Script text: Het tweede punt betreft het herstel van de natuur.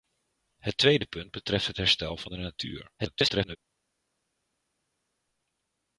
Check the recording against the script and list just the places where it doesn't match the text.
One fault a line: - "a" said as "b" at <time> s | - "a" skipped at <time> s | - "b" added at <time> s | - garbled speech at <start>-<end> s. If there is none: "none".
- garbled speech at 3.0-3.6 s